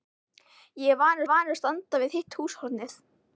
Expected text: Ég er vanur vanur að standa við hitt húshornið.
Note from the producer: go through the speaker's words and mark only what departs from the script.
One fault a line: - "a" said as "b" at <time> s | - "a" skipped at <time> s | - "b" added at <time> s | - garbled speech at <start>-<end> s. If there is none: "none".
none